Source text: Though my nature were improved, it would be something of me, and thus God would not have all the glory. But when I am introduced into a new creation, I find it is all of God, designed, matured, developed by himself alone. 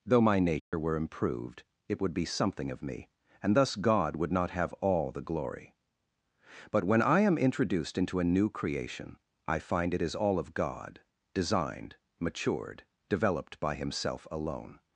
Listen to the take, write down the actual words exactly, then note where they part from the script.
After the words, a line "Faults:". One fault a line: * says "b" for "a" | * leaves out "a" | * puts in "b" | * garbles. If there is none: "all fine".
Though my nature were improved, it would be something of me, and thus God would not have all the glory. But when I am introduced into a new creation, I find it is all of God, designed, matured, developed by himself alone.
Faults:
all fine